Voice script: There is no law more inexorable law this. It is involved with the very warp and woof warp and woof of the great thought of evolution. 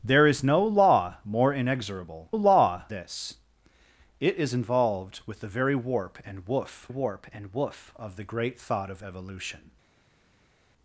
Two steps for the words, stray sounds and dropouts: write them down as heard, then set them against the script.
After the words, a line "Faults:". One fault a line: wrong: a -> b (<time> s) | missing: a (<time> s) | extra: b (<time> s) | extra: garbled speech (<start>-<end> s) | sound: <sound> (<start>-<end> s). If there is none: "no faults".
There is no law more inexorable law this. It is involved with the very warp and woof warp and woof of the great thought of evolution.
Faults:
no faults